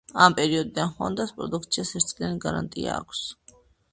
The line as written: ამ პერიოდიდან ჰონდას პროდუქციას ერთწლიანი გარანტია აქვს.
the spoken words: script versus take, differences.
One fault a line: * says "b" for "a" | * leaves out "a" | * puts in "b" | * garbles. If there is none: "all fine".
all fine